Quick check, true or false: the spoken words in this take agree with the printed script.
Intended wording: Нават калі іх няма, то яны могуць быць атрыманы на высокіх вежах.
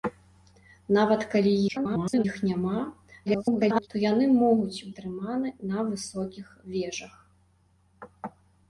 false